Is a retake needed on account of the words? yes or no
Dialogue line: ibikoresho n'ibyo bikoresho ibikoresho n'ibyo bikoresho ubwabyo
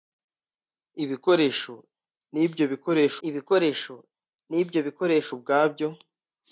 no